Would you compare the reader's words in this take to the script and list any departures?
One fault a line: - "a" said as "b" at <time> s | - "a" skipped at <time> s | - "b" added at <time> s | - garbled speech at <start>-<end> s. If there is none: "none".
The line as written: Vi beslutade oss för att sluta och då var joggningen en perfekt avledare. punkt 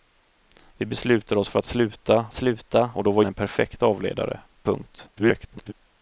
- "sluta" added at 2.3 s
- "joggningen" skipped at 3.2 s
- garbled speech at 5.1-5.7 s